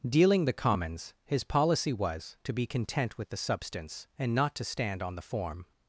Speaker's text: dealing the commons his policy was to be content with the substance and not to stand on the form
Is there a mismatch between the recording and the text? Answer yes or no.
no